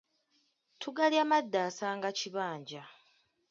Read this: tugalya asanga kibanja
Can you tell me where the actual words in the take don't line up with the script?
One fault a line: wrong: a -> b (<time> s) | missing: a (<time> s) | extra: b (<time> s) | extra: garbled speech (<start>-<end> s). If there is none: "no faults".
extra: madda (1.3 s)